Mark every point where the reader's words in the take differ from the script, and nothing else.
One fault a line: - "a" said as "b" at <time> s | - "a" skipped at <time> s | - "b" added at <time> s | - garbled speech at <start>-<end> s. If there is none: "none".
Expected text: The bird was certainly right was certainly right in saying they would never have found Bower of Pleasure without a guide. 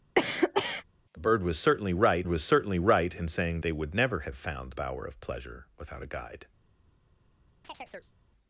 none